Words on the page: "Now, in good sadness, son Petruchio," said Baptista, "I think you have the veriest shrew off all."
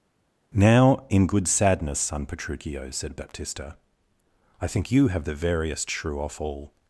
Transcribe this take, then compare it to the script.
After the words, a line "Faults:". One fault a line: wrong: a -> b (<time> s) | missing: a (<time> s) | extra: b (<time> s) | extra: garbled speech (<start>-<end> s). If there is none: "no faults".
"Now, in good sadness, son Petruchio," said Baptista, "I think you have the veriest shrew off all."
Faults:
no faults